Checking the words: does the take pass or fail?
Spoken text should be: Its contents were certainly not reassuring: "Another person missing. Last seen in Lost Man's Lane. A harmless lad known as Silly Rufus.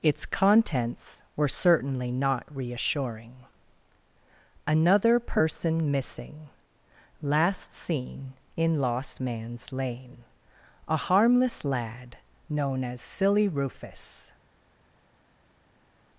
pass